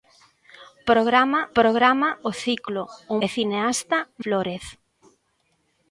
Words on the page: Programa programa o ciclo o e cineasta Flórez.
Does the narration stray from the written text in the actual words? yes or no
no